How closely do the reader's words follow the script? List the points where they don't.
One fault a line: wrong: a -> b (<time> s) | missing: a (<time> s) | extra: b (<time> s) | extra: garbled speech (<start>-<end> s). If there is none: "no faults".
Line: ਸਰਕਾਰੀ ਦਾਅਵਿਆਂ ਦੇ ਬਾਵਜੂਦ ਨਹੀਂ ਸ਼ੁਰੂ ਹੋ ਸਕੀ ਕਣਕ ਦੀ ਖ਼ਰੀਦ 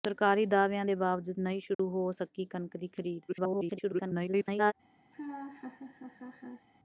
extra: garbled speech (3.3-4.7 s)